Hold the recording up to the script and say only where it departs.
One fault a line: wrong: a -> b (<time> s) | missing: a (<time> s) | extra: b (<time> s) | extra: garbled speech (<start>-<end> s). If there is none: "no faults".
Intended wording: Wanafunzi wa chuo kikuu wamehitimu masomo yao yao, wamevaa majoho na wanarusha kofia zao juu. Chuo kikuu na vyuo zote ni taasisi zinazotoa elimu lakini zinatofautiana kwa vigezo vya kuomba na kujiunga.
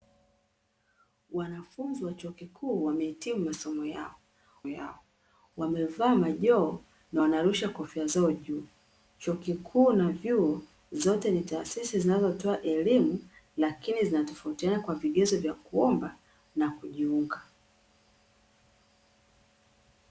no faults